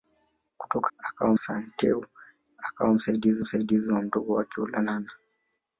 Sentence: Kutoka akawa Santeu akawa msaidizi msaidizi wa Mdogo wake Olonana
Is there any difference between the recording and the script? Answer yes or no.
no